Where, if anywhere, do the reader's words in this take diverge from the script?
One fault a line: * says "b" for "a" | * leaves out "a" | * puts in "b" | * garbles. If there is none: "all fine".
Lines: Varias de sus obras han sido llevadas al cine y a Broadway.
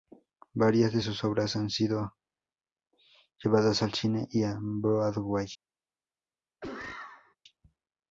all fine